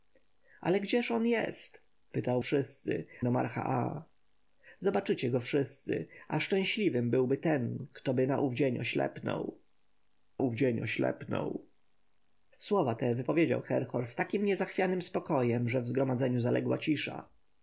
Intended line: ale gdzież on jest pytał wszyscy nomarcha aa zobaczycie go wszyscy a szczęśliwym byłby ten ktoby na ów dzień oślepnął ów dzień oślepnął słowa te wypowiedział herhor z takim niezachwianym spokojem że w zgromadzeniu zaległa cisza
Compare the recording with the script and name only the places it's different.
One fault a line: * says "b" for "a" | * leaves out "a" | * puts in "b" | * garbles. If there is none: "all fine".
all fine